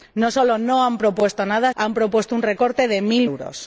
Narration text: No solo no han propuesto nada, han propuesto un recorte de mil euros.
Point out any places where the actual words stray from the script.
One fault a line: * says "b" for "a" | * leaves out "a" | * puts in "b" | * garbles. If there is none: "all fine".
all fine